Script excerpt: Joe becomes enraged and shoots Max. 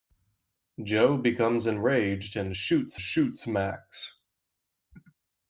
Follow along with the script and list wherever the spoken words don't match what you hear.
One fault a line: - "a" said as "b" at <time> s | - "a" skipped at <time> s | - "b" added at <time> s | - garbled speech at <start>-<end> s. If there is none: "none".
- "shoots" added at 3.0 s